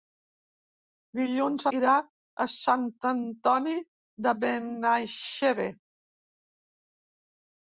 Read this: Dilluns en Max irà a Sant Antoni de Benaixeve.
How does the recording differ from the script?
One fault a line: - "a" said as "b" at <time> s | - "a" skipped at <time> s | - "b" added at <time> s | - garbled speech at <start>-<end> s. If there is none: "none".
- "en Max" skipped at 1.6 s